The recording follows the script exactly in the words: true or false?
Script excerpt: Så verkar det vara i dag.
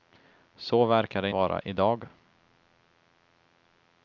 true